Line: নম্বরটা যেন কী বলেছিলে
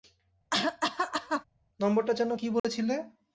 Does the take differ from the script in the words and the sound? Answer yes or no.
yes